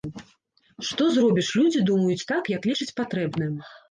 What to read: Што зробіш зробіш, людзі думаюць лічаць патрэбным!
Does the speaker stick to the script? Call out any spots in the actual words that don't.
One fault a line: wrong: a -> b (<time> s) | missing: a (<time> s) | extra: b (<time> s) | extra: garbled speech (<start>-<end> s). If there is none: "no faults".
missing: зробіш (1.5 s)
extra: так як (2.3 s)